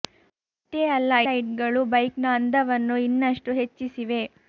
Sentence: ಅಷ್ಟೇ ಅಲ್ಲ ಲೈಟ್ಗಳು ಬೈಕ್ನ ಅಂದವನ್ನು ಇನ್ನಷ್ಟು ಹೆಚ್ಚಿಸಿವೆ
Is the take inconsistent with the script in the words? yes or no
no